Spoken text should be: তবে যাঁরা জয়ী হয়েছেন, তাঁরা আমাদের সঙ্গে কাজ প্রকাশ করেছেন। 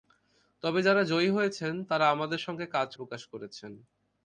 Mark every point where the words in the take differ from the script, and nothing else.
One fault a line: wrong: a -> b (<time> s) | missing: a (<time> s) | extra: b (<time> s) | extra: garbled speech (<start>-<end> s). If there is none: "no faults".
no faults